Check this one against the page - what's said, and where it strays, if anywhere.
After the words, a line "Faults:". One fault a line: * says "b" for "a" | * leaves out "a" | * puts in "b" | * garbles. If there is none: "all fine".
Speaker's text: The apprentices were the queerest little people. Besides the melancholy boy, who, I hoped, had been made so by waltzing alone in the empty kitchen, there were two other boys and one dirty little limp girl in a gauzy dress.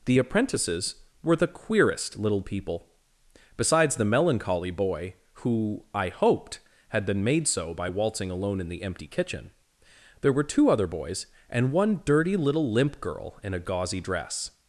The apprentices were the queerest little people. Besides the melancholy boy, who, I hoped, had been made so by waltzing alone in the empty kitchen, there were two other boys and one dirty little limp girl in a gauzy dress.
Faults:
all fine